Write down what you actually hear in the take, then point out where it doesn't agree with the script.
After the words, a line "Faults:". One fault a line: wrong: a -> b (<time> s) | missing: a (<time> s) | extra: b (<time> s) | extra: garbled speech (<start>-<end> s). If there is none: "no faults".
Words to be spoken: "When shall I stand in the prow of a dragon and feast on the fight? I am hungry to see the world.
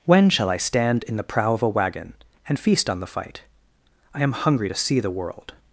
"When shall I stand in the prow of a wagon and feast on the fight? I am hungry to see the world.
Faults:
wrong: dragon -> wagon (1.7 s)